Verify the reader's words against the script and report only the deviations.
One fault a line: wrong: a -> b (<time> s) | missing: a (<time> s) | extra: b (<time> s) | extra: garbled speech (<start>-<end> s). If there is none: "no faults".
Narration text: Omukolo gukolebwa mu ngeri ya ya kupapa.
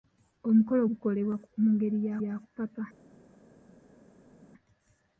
no faults